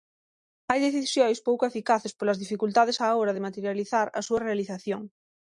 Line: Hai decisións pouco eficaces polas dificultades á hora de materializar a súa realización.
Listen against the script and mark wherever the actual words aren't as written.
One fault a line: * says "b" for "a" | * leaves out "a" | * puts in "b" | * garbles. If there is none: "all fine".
all fine